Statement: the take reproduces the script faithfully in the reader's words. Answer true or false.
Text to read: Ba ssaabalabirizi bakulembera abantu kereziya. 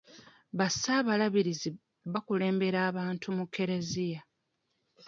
false